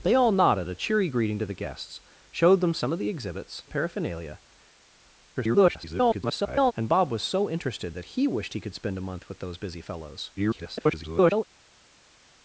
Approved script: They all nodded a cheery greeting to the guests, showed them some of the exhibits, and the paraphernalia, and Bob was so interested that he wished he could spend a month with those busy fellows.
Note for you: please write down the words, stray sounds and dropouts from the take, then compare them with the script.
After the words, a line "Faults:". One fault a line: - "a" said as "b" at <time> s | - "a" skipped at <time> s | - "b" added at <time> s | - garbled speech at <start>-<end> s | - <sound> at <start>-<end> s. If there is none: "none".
They all nodded a cheery greeting to the guests, showed them some of the exhibits, the paraphernalia, [garbled] and Bob was so interested that he wished he could spend a month with those busy fellows. [garbled]
Faults:
- "and" skipped at 3.6 s
- garbled speech at 5.3-6.7 s
- garbled speech at 10.4-11.4 s